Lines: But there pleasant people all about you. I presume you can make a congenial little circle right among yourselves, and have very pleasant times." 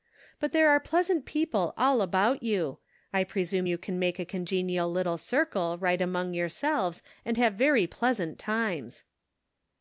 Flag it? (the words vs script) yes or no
yes